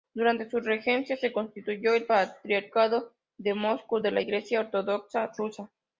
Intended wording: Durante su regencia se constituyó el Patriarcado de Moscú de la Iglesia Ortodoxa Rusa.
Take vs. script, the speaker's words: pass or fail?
pass